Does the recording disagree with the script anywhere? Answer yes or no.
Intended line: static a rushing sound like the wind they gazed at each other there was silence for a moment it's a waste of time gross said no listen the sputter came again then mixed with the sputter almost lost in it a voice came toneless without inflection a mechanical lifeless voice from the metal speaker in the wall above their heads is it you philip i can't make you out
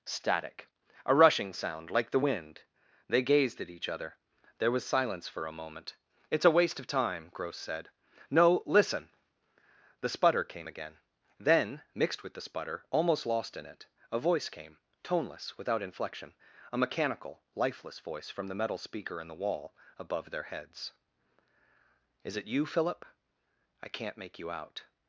no